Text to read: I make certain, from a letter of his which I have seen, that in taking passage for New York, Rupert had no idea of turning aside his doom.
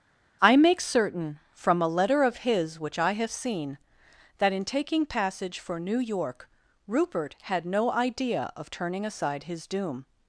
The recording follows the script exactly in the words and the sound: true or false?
true